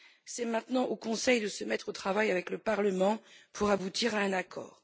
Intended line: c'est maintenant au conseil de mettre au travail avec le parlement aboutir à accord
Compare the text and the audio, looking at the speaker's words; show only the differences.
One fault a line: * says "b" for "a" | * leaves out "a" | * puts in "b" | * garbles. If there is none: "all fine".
* puts in "se"
* puts in "pour"
* puts in "un"